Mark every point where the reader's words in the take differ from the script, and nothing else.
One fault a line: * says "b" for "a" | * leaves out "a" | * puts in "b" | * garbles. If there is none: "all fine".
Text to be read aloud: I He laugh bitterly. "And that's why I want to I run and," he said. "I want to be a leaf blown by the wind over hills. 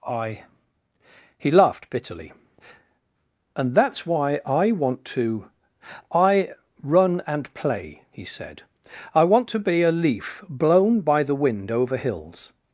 * says "laughed" for "laugh"
* puts in "play"